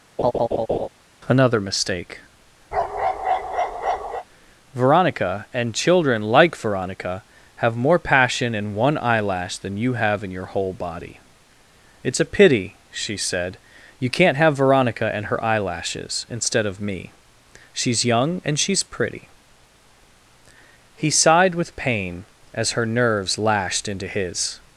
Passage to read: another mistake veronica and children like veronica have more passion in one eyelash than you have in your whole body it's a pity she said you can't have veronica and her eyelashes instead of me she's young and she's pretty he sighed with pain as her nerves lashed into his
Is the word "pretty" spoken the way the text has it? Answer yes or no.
yes